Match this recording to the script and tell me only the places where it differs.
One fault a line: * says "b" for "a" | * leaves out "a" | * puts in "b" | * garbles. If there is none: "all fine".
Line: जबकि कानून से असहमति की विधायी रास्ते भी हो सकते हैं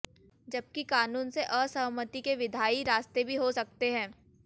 * says "के" for "की"